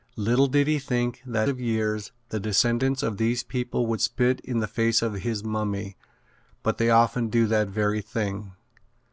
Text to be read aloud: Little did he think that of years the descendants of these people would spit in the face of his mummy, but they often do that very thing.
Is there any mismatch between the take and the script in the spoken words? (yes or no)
no